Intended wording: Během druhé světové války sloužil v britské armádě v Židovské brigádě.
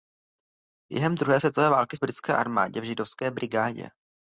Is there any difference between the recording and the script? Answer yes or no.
yes